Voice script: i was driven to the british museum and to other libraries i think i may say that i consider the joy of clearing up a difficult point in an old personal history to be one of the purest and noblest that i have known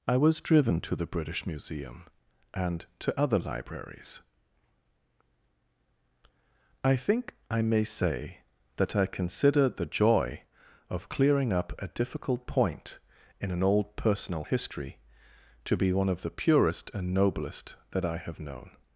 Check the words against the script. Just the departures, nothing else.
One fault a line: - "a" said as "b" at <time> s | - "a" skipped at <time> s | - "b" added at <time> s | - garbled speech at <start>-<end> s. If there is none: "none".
none